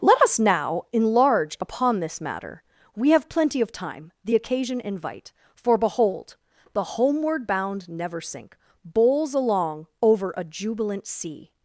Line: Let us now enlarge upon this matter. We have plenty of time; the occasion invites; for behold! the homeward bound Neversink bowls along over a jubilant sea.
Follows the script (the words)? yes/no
no